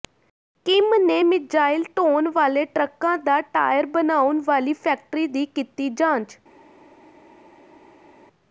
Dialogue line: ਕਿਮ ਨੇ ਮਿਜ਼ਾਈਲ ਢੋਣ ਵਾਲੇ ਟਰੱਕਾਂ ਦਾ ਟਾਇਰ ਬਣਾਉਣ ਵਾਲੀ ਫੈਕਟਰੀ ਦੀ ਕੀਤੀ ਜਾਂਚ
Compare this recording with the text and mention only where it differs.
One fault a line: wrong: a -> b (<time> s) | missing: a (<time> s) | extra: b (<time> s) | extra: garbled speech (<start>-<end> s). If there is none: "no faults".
no faults